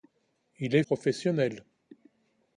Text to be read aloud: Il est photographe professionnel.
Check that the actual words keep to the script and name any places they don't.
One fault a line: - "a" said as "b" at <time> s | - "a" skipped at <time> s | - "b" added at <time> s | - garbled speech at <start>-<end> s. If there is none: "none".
- "photographe" skipped at 0.8 s